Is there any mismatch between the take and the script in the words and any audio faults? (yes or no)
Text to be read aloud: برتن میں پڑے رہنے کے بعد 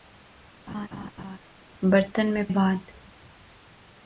yes